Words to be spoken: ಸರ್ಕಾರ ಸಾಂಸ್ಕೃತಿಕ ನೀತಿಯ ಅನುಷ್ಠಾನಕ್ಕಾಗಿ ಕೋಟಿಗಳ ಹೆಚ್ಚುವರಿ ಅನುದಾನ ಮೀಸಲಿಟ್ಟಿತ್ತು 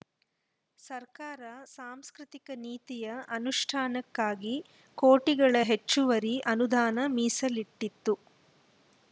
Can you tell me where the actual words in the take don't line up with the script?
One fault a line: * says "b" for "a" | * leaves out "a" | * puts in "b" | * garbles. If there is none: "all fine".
all fine